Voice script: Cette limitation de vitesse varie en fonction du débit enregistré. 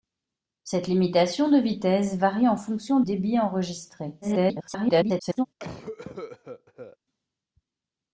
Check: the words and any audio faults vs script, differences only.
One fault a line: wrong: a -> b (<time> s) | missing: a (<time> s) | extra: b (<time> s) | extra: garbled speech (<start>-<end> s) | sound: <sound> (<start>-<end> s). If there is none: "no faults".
missing: du (3.0 s)
extra: garbled speech (4.2-5.5 s)
sound: cough (5.6-7.0 s)